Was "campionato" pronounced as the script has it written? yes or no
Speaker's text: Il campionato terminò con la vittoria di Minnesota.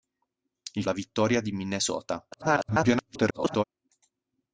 no